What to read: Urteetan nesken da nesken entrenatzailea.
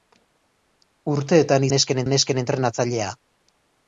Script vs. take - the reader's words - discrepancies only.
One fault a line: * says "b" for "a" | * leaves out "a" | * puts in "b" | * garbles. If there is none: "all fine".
all fine